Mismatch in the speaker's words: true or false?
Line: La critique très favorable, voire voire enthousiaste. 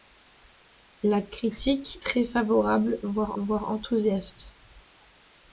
false